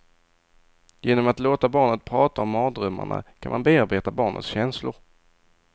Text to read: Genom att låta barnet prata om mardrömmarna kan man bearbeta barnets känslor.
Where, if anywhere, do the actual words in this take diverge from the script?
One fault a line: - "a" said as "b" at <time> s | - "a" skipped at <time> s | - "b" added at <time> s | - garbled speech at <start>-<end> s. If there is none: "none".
none